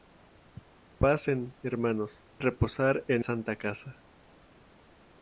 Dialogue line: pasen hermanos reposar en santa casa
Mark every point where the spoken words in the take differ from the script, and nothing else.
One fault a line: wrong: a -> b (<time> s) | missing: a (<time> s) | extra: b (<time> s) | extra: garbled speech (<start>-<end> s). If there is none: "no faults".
no faults